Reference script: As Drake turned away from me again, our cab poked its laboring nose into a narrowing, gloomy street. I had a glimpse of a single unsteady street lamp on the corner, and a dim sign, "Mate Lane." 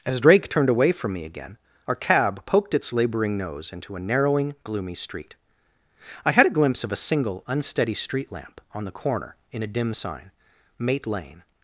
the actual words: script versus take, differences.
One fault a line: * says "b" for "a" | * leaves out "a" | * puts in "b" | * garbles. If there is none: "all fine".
* says "in" for "and"